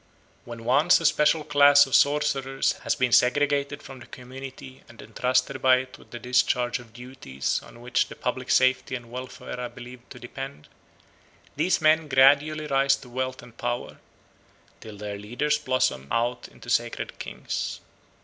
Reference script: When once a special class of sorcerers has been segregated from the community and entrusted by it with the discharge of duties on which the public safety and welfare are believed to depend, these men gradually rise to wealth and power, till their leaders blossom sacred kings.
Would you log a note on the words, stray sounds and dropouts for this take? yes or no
yes